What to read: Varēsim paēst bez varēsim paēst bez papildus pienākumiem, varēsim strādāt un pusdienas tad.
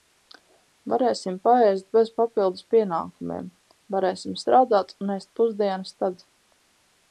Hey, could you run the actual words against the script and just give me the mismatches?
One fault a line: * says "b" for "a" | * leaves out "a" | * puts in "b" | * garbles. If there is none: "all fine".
* leaves out "varēsim paēst bez"
* puts in "ēst"